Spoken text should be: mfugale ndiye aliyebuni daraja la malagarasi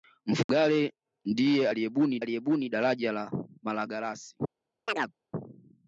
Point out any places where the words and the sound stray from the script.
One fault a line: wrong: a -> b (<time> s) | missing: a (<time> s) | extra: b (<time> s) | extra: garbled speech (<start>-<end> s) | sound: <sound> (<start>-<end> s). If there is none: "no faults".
sound: dropout (0.4-0.5 s)
extra: aliyebuni (2.2 s)
sound: chirp (4.9-5.1 s)